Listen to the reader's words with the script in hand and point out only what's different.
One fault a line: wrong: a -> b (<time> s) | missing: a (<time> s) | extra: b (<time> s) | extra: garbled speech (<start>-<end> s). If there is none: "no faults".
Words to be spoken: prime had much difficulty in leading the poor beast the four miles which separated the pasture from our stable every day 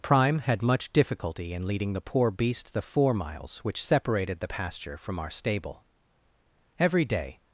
no faults